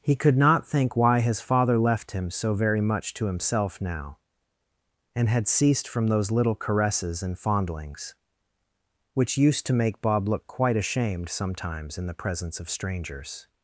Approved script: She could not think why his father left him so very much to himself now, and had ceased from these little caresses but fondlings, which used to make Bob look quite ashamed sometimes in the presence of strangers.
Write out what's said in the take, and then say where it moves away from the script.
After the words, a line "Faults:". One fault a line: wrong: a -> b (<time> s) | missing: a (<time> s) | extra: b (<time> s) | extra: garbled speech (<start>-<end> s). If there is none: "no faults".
He could not think why his father left him so very much to himself now, and had ceased from those little caresses and fondlings, which used to make Bob look quite ashamed sometimes in the presence of strangers.
Faults:
wrong: She -> He (0.0 s)
wrong: these -> those (6.1 s)
wrong: but -> and (7.2 s)